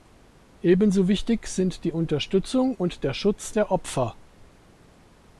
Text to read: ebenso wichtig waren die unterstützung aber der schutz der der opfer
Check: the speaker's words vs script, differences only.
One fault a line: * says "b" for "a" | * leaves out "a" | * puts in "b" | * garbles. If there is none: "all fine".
* says "sind" for "waren"
* says "und" for "aber"
* leaves out "der"